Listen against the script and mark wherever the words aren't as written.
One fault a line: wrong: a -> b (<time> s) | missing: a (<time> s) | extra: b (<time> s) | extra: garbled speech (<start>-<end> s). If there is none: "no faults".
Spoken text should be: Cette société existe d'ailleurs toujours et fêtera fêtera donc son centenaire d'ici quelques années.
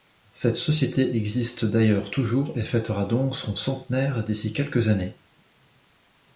missing: fêtera (3.0 s)